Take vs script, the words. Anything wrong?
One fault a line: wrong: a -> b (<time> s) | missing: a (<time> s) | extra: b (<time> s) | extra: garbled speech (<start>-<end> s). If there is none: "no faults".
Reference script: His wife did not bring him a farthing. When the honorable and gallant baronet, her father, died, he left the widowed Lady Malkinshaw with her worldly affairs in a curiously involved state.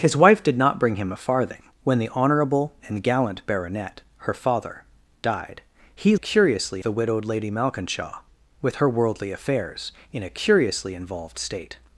wrong: left -> curiously (6.2 s)